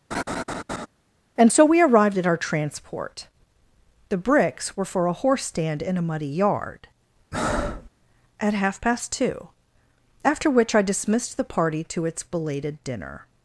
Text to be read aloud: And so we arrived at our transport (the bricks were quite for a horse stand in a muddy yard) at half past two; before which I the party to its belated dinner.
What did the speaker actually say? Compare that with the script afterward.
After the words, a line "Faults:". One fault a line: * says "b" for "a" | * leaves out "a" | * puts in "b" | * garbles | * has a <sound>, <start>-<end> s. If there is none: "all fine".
And so we arrived at our transport (the bricks were for a horse stand in a muddy yard) at half past two; after which I dismissed the party to its belated dinner.
Faults:
* has a laugh, 0.1-0.9 s
* leaves out "quite"
* has a breath, 7.3-7.9 s
* says "after" for "before"
* puts in "dismissed"